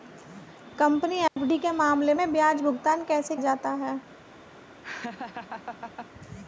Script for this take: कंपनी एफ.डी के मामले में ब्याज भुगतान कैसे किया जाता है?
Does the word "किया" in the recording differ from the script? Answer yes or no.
yes